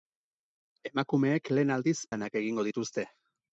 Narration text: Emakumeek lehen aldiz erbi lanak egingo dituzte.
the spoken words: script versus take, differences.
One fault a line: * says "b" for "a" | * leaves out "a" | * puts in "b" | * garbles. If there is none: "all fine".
* leaves out "erbi"